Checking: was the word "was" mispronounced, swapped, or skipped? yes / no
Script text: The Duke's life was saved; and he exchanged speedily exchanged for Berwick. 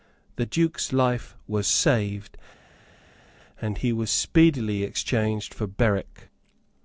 no